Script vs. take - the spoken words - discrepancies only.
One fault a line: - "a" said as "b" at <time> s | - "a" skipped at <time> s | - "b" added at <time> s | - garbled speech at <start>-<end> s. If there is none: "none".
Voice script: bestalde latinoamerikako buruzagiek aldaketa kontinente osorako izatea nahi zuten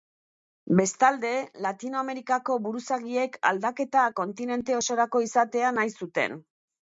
none